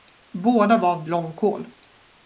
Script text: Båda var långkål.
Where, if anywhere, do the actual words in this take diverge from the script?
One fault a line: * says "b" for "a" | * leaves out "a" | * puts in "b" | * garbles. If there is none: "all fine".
all fine